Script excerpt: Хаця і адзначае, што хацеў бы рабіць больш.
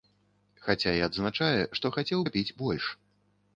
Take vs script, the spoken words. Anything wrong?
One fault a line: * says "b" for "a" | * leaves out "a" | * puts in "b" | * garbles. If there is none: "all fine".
* leaves out "бы"